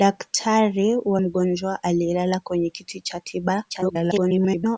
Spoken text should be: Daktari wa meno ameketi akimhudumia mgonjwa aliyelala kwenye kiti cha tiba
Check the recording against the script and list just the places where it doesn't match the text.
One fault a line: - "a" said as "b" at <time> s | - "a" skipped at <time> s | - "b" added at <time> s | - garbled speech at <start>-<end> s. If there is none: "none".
- "meno ameketi akimhudumia" skipped at 1.2 s
- garbled speech at 3.7-4.8 s